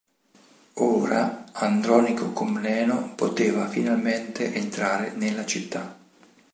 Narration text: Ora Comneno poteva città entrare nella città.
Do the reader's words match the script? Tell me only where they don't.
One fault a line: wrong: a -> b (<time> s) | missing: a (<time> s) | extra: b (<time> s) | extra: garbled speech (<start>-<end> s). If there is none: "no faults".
extra: Andronico (1.5 s)
wrong: città -> finalmente (3.7 s)